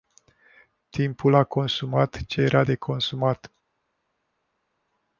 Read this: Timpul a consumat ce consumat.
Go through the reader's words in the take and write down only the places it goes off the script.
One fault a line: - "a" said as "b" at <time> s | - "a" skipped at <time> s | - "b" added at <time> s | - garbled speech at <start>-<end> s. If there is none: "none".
- "era de" added at 2.4 s